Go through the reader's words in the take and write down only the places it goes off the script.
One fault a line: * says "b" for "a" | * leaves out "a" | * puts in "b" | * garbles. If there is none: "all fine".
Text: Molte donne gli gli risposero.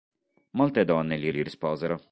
all fine